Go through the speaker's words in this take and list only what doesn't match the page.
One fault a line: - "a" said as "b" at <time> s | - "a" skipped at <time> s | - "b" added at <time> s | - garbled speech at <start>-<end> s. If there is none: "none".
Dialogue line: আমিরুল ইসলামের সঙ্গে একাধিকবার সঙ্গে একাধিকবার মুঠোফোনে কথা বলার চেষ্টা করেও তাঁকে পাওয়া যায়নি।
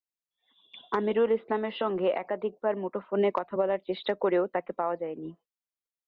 - "সঙ্গে একাধিকবার" skipped at 2.7 s